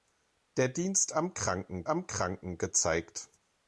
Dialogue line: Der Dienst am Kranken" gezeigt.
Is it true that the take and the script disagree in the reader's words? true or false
true